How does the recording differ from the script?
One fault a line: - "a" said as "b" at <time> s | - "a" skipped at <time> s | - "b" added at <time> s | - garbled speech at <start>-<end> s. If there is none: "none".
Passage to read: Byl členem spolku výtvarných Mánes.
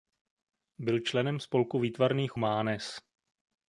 none